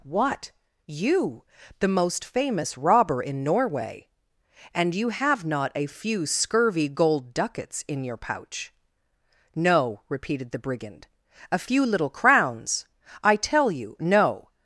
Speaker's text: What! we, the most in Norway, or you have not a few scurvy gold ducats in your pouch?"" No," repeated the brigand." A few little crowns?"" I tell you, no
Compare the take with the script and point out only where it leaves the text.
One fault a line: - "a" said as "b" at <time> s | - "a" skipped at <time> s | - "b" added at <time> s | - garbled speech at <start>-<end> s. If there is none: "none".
- "we" said as "you" at 0.9 s
- "famous robber" added at 2.2 s
- "or" said as "and" at 4.7 s